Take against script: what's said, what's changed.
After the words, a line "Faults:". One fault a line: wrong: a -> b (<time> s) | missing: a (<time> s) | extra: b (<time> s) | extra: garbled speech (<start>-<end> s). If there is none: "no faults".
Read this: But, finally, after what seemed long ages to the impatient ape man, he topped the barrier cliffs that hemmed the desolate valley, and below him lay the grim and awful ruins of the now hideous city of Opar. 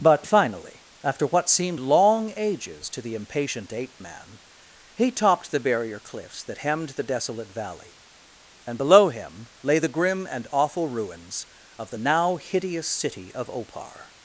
But, finally, after what seemed long ages to the impatient ape man, he topped the barrier cliffs that hemmed the desolate valley, and below him lay the grim and awful ruins of the now hideous city of Opar.
Faults:
no faults